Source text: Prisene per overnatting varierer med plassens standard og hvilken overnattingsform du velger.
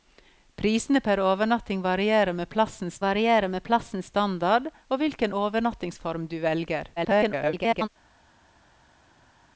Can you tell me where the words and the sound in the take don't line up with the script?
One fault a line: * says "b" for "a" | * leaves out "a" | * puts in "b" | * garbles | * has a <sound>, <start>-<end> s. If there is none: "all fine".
* puts in "varierer med plassens"
* garbles